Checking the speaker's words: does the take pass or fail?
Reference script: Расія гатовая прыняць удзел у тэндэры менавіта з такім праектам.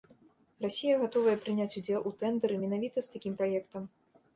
pass